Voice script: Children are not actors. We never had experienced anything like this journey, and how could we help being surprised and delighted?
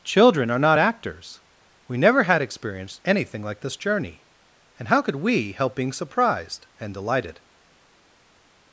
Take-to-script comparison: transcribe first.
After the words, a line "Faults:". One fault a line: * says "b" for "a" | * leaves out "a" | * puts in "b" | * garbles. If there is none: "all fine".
Children are not actors. We never had experienced anything like this journey, and how could we help being surprised and delighted?
Faults:
all fine